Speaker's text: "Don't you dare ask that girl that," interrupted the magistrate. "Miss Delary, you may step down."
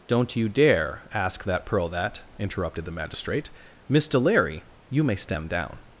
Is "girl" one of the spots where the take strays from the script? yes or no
yes